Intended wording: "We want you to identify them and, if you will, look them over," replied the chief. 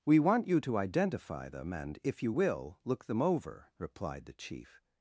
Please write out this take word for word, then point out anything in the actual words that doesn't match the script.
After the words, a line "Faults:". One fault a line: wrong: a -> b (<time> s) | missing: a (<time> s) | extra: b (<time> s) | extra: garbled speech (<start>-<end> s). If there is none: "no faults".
"We want you to identify them and, if you will, look them over," replied the chief.
Faults:
no faults